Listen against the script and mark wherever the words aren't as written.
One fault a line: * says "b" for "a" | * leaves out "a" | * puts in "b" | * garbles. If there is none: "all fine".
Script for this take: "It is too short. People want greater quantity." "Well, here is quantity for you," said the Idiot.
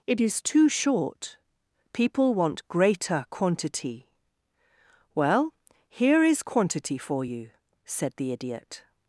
all fine